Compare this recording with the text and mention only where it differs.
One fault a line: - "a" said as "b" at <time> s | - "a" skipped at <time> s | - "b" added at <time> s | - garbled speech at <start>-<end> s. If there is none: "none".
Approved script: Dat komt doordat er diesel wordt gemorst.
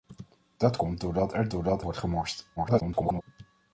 - "diesel" said as "doordat" at 1.5 s
- garbled speech at 2.6-3.2 s